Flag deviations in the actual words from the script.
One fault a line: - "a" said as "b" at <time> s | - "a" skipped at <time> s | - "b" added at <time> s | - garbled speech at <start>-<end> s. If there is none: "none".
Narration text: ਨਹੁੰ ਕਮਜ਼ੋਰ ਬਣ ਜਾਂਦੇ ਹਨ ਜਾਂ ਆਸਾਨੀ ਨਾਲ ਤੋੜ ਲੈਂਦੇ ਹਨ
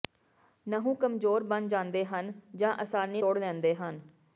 - "ਨਾਲ" skipped at 3.2 s